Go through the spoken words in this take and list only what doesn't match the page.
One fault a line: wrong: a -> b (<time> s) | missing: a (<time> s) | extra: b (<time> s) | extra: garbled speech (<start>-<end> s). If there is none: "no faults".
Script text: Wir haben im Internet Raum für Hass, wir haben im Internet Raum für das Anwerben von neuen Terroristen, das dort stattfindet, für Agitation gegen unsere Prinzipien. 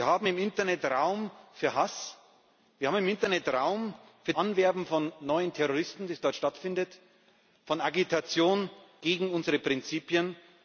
missing: das (4.3 s)